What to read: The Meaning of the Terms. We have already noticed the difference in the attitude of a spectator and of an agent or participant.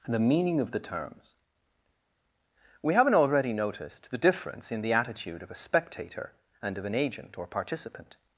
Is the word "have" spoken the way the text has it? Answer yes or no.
no